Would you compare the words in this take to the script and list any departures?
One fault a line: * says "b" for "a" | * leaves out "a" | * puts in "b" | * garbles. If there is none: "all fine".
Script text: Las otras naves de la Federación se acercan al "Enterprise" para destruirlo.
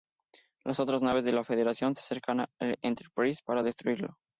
all fine